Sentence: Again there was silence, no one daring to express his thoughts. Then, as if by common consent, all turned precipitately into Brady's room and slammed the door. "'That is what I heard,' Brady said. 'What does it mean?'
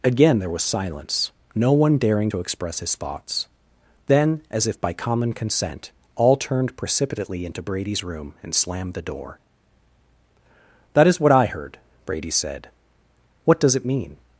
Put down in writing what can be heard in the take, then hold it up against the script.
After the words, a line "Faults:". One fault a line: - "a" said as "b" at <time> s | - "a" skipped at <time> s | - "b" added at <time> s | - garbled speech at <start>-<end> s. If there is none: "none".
Again there was silence, no one daring to express his thoughts. Then, as if by common consent, all turned precipitately into Brady's room and slammed the door. "'That is what I heard,' Brady said. 'What does it mean?'
Faults:
none